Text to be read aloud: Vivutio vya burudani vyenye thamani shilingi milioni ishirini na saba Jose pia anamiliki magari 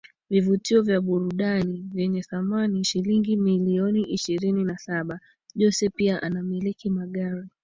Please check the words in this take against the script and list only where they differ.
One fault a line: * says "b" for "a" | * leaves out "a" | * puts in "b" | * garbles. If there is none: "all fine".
all fine